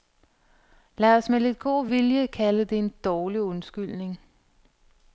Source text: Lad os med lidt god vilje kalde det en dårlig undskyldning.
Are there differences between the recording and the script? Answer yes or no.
no